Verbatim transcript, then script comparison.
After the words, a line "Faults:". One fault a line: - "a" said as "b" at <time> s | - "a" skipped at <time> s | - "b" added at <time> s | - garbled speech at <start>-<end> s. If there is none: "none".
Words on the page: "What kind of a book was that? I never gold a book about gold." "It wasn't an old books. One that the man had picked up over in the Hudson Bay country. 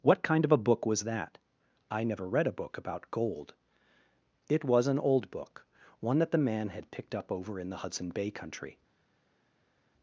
"What kind of a book was that? I never read a book about gold." "It was an old book. One that the man had picked up over in the Hudson Bay country.
Faults:
- "gold" said as "read" at 2.3 s
- "wasn't" said as "was" at 4.6 s
- "books" said as "book" at 5.3 s